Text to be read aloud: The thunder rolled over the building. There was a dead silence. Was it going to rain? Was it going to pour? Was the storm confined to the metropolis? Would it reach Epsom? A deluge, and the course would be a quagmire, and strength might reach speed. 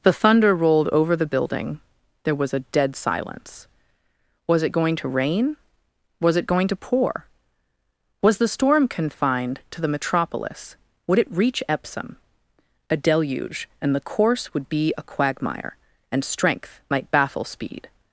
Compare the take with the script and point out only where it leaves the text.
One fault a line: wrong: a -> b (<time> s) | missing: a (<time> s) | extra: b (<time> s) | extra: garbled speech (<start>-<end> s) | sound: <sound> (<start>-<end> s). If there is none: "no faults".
wrong: reach -> baffle (17.1 s)